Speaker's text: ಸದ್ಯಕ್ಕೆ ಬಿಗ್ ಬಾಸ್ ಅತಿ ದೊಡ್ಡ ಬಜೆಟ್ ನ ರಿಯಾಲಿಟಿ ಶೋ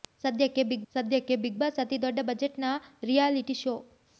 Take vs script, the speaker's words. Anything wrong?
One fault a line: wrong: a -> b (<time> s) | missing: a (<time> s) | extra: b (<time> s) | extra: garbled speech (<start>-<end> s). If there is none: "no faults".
extra: ಸದ್ಯಕ್ಕೆ ಬಿಗ್ (0.9 s)